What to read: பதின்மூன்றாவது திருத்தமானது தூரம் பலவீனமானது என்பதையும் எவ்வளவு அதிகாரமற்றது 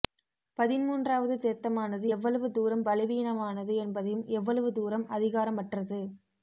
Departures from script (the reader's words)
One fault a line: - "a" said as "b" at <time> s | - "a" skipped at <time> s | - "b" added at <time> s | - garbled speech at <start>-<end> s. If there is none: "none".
- "எவ்வளவு" added at 2.1 s
- "தூரம்" added at 4.7 s